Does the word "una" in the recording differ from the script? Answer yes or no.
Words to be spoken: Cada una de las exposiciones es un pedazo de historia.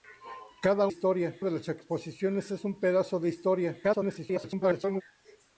yes